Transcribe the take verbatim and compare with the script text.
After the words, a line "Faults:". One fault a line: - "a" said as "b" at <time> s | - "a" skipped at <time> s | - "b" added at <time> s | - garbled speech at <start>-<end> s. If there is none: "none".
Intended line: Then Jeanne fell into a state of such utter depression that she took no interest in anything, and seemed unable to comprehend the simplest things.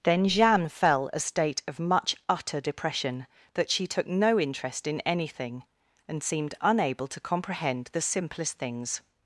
Then Jeanne fell a state of much utter depression that she took no interest in anything, and seemed unable to comprehend the simplest things.
Faults:
- "into" skipped at 1.1 s
- "such" said as "much" at 1.8 s